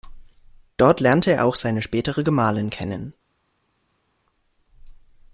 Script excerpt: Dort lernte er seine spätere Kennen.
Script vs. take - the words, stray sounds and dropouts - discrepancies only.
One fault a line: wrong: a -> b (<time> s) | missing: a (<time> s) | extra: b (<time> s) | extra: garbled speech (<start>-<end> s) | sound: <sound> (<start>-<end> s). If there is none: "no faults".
extra: auch (1.4 s)
extra: Gemahlin (2.2 s)